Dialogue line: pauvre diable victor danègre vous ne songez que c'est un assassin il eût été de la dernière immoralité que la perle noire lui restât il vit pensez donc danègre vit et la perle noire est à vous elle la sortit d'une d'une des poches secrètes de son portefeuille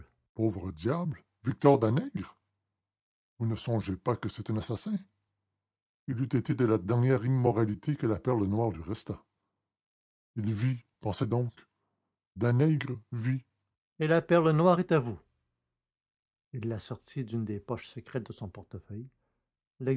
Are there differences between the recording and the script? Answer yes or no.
yes